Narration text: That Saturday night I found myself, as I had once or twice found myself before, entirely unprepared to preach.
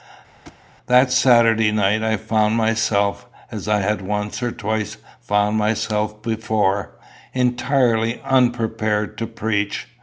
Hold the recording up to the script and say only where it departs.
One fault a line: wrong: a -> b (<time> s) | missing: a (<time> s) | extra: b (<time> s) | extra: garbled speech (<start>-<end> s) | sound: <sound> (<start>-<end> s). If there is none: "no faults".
sound: thud (0.5-0.6 s)